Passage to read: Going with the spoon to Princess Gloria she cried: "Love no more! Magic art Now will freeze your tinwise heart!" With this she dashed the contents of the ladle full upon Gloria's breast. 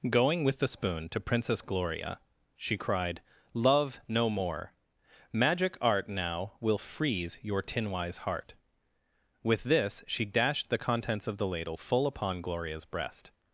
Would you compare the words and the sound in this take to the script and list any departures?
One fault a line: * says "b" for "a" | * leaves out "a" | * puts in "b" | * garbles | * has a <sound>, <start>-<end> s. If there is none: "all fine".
all fine